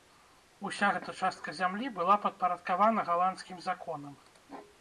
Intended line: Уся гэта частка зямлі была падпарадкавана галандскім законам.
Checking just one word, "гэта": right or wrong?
right